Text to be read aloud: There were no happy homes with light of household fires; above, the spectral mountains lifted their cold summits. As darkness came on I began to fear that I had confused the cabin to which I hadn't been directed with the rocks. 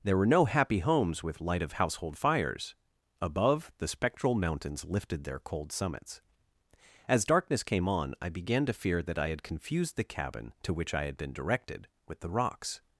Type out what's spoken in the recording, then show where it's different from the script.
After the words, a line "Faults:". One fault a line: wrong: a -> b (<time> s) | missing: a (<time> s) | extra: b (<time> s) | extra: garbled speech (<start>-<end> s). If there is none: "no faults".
There were no happy homes with light of household fires; above, the spectral mountains lifted their cold summits. As darkness came on I began to fear that I had confused the cabin to which I had been directed with the rocks.
Faults:
wrong: hadn't -> had (11.1 s)